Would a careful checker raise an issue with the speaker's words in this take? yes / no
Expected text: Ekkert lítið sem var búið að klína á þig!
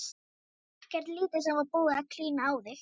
no